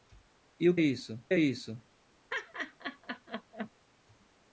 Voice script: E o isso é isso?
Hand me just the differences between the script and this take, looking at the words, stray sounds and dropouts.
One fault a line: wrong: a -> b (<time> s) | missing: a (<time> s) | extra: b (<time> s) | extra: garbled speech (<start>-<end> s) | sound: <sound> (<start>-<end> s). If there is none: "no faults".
sound: laugh (2.3-3.7 s)